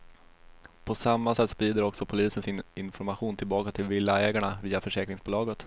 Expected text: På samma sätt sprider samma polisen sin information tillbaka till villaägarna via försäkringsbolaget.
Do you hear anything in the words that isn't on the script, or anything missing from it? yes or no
yes